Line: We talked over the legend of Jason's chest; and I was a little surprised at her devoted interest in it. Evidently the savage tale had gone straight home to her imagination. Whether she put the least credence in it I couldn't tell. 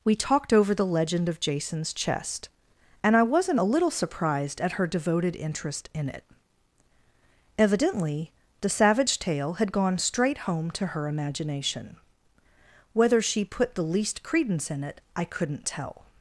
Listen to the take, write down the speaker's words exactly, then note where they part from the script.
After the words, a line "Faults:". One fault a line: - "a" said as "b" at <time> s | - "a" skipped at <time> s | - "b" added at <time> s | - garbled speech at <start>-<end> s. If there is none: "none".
We talked over the legend of Jason's chest; and I wasn't a little surprised at her devoted interest in it. Evidently the savage tale had gone straight home to her imagination. Whether she put the least credence in it I couldn't tell.
Faults:
- "was" said as "wasn't" at 3.2 s